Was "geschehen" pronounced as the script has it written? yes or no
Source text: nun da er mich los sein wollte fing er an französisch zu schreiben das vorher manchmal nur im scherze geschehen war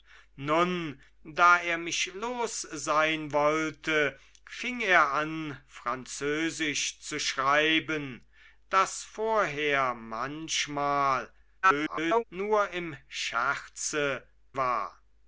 no